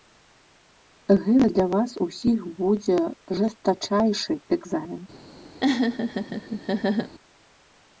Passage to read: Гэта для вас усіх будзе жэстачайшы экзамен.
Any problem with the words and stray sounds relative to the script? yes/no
yes